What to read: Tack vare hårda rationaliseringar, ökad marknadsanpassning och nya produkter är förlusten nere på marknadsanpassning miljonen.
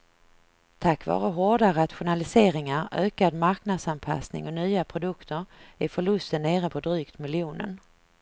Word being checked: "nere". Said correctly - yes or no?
yes